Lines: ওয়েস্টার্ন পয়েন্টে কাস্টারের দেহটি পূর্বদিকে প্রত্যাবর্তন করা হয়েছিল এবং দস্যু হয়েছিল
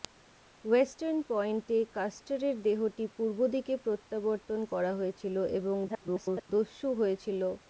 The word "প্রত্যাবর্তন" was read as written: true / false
true